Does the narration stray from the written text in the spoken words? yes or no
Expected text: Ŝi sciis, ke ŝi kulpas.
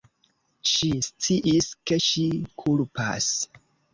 no